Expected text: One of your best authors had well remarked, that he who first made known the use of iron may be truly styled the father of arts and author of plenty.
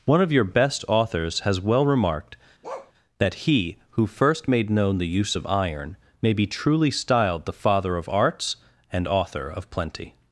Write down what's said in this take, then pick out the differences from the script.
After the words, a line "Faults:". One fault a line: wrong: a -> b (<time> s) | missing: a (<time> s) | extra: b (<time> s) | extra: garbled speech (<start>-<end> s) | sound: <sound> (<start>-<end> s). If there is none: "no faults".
One of your best authors has well remarked, that he who first made known the use of iron may be truly styled the father of arts and author of plenty.
Faults:
wrong: had -> has (1.4 s)
sound: bark (2.6-2.9 s)